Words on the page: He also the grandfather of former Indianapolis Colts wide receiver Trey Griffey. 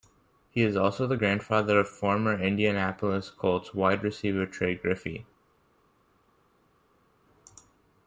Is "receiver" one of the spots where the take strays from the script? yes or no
no